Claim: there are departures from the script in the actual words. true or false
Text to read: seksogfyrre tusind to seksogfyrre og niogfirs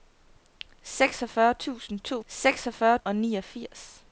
false